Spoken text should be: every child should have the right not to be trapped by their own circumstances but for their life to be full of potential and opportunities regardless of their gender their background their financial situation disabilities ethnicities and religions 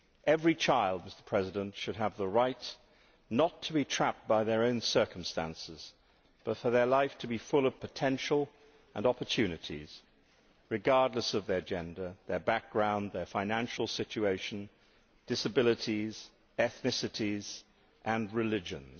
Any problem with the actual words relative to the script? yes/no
no